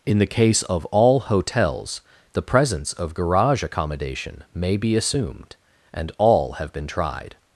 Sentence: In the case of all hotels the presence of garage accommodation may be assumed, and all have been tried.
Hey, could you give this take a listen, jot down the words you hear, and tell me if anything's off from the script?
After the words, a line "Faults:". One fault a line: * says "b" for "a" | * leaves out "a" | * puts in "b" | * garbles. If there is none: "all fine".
In the case of all hotels the presence of garage accommodation may be assumed, and all have been tried.
Faults:
all fine